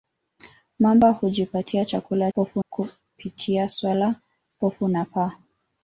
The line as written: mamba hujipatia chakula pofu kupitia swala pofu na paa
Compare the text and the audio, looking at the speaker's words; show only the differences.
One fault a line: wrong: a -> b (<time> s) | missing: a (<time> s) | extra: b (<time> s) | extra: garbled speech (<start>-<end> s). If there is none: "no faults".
no faults